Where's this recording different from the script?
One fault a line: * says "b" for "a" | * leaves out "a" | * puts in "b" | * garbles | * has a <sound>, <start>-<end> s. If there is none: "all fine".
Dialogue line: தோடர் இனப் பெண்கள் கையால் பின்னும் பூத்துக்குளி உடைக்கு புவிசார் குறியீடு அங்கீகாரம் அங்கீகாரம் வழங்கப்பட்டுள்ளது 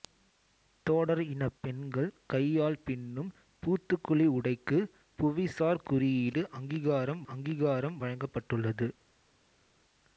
all fine